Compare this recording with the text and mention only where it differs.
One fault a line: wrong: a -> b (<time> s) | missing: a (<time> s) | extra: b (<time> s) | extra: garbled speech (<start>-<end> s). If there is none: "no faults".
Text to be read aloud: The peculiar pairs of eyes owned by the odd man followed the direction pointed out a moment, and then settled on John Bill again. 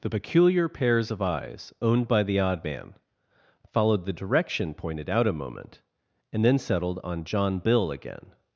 no faults